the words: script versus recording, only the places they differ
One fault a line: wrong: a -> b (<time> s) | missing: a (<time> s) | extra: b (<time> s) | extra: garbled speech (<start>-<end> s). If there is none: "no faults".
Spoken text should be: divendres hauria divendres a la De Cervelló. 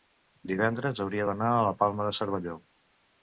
wrong: divendres -> d'anar (1.3 s)
extra: Palma (1.8 s)